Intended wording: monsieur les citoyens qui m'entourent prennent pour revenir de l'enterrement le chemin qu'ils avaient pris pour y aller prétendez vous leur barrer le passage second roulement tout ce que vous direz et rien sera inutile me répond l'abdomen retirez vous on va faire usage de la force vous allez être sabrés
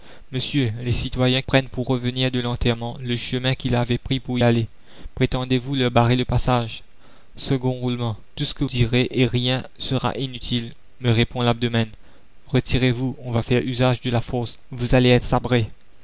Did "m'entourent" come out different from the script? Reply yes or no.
yes